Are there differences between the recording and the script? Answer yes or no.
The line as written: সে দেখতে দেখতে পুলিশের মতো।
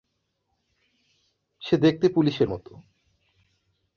yes